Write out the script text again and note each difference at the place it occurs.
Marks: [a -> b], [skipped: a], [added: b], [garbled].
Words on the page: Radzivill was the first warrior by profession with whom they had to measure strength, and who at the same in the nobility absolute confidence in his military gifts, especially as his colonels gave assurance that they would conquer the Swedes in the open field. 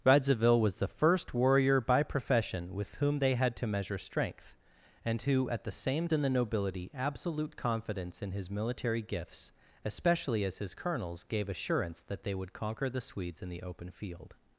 Radzivill was the first warrior by profession with whom they had to measure strength, and who at the same in the nobility absolute confidence in his military gifts, especially as his colonels gave assurance that they would conquer the Swedes in the open field.